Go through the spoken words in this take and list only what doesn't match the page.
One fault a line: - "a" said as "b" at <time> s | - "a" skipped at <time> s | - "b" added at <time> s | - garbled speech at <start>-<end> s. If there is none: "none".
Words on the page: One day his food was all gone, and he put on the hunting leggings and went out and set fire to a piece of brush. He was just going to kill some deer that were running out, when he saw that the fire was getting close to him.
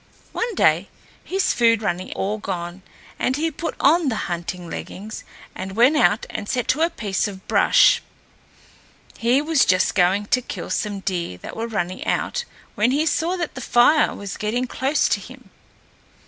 - "was" said as "running" at 1.8 s
- "fire" skipped at 6.7 s